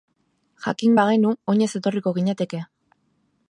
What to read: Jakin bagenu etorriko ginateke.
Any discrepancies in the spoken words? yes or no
yes